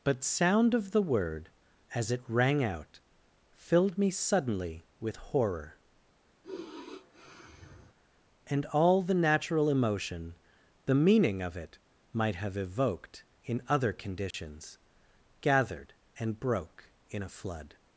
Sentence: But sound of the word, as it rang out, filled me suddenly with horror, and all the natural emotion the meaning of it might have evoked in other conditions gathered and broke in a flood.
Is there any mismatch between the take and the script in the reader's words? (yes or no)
no